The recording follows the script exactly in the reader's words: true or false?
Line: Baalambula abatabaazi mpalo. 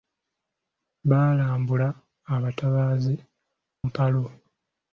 true